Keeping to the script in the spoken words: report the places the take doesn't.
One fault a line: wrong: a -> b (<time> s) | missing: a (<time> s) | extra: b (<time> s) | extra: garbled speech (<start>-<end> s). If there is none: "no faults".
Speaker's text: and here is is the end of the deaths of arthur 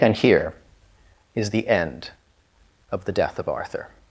missing: is (1.5 s)
wrong: deaths -> death (3.1 s)